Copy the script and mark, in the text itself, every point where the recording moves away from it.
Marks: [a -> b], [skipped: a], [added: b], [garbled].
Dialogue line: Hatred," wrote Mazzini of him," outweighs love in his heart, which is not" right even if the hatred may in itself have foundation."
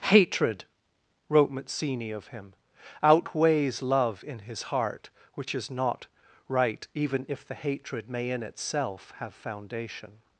Hatred," wrote Mazzini of him," outweighs love in his heart, which is not" right even if the hatred may in itself have foundation."